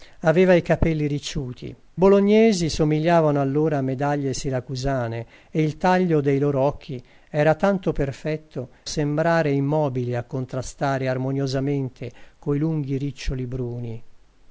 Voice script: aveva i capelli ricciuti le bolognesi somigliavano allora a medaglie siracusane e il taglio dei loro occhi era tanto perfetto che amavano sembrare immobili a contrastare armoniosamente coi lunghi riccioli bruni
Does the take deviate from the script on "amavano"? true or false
true